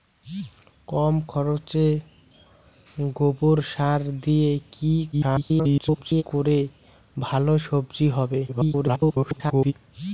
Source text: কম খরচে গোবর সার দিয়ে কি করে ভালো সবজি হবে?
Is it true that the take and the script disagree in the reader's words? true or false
true